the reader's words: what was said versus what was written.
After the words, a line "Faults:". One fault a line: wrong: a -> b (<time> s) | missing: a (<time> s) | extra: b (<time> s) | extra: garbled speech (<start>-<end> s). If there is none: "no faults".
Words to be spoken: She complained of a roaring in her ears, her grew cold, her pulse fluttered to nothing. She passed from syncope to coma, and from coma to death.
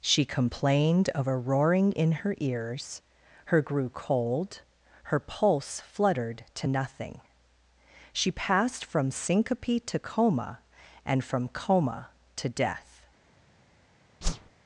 She complained of a roaring in her ears, her grew cold, her pulse fluttered to nothing. She passed from syncope to coma, and from coma to death.
Faults:
no faults